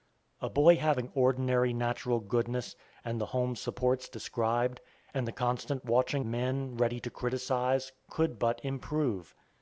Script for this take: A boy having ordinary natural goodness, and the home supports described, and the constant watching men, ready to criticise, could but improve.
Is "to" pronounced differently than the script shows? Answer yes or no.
no